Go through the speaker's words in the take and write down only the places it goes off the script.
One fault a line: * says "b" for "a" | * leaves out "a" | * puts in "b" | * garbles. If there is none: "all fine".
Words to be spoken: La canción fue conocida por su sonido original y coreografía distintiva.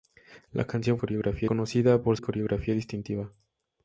* says "coreografía" for "fue"
* leaves out "su sonido original"